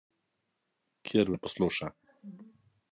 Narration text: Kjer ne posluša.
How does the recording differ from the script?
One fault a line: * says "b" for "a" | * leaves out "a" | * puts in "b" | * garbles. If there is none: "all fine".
all fine